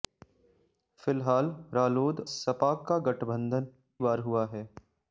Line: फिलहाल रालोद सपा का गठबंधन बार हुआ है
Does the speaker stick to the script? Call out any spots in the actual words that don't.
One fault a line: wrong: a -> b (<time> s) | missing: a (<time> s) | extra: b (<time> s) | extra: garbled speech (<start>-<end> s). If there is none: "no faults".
no faults